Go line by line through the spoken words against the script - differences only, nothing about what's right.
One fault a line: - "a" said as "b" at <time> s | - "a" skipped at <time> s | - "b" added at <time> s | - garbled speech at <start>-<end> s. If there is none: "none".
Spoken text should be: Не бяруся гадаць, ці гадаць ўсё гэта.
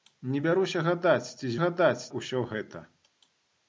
none